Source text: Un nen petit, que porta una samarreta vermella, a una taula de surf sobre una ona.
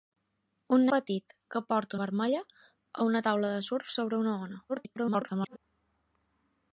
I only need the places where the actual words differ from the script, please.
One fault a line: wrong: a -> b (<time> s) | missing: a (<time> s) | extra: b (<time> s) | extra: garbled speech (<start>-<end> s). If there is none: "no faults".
missing: nen (0.8 s)
missing: una samarreta (2.0 s)
extra: garbled speech (4.7-5.6 s)